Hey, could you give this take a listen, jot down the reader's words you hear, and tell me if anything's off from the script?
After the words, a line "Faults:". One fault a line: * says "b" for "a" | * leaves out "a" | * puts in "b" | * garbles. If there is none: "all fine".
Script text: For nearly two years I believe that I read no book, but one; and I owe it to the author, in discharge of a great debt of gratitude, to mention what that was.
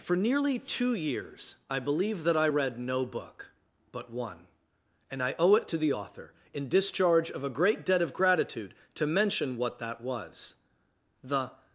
For nearly two years I believe that I read no book, but one; and I owe it to the author, in discharge of a great debt of gratitude, to mention what that was. The
Faults:
* puts in "The"